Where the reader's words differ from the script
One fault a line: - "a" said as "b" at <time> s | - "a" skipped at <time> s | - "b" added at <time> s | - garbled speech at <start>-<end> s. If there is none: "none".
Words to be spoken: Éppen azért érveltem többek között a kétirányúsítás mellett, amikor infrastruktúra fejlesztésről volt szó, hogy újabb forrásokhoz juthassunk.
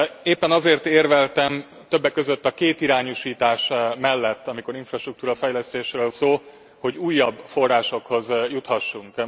- "volt" skipped at 6.1 s